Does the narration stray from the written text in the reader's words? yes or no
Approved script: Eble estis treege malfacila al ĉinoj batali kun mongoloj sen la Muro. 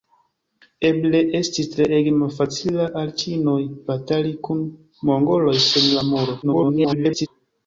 yes